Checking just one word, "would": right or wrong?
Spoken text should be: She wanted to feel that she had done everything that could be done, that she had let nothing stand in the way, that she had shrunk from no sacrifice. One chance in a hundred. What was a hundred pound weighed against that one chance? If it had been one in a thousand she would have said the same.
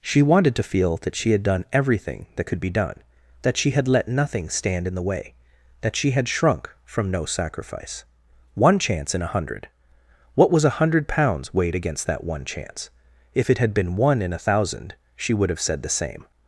right